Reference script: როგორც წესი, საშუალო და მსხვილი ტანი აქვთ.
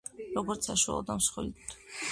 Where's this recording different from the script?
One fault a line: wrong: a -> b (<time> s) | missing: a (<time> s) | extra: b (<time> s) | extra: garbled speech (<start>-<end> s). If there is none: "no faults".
missing: წესი (0.7 s)
missing: ტანი (1.6 s)